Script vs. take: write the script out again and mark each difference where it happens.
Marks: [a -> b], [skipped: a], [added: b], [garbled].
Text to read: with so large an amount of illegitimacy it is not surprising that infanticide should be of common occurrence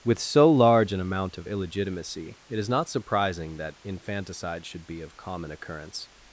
with so large an amount of illegitimacy it is not surprising that infanticide should be of common occurrence